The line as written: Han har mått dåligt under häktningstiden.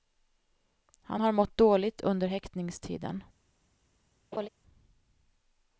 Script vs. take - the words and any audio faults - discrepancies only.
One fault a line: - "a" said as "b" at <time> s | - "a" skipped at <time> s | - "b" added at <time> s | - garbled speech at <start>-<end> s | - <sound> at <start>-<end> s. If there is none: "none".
- laugh at 4.3-4.5 s